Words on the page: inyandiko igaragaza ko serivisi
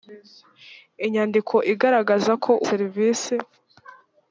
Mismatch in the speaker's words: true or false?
false